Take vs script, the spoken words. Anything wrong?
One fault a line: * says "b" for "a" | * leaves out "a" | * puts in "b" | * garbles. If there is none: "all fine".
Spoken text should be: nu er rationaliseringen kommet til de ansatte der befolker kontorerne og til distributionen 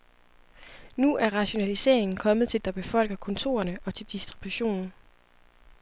* leaves out "de ansatte"